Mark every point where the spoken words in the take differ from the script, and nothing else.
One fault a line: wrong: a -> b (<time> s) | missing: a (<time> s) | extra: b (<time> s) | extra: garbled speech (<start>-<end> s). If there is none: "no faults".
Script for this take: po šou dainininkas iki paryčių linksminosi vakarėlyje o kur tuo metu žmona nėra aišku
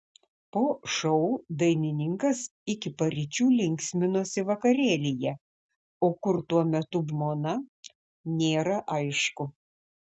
no faults